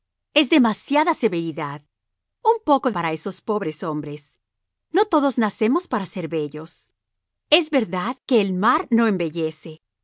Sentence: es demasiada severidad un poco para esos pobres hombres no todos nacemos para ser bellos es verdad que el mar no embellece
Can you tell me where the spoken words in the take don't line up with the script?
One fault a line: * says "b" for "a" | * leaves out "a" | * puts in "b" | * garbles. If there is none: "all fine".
all fine